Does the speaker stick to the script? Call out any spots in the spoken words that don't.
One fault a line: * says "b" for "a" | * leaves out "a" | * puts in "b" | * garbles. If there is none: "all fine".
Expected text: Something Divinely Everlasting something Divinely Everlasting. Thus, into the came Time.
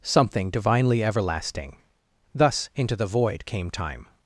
* leaves out "something Divinely Everlasting"
* puts in "void"